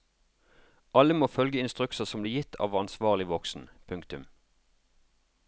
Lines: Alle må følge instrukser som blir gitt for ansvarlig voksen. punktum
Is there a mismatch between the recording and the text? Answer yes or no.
yes